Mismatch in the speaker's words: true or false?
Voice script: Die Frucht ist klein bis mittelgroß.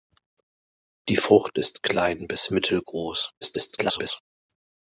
true